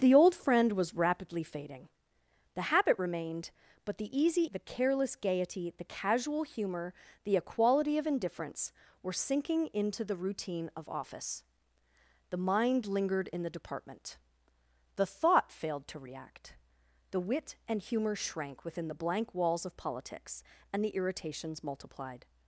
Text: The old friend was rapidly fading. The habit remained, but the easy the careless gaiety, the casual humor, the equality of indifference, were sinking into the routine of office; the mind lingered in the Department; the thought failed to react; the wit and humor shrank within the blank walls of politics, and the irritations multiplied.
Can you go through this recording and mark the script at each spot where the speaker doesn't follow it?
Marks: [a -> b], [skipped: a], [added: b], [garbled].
The old friend was rapidly fading. The habit remained, but the easy the careless gaiety, the casual humor, the equality of indifference, were sinking into the routine of office; the mind lingered in the Department; the thought failed to react; the wit and humor shrank within the blank walls of politics, and the irritations multiplied.